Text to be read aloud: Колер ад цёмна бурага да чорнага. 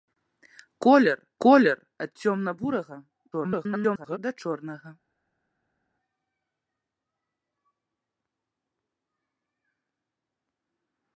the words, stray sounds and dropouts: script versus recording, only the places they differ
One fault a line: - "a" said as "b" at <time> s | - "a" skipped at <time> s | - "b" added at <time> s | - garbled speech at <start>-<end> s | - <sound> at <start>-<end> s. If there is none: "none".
- "колер" added at 1.4 s
- garbled speech at 3.3-4.2 s